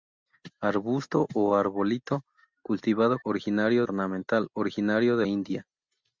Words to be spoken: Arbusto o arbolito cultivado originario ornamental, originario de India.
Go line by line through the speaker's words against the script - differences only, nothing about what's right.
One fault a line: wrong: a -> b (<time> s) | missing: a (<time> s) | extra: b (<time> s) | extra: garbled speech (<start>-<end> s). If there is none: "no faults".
no faults